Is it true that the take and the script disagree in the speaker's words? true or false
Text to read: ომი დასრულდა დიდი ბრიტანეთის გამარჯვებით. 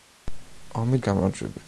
true